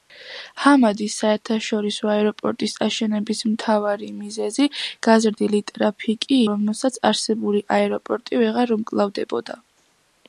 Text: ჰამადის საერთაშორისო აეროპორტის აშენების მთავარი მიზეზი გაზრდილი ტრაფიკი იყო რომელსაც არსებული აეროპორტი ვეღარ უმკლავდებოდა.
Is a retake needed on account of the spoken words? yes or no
yes